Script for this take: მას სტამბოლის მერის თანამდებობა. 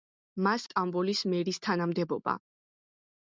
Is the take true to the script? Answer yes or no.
yes